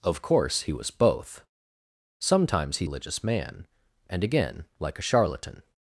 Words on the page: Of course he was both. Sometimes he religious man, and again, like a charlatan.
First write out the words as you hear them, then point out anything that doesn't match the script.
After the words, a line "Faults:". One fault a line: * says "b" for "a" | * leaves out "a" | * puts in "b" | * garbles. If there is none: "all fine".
Of course he was both. Sometimes he religious man, and again, like a charlatan.
Faults:
all fine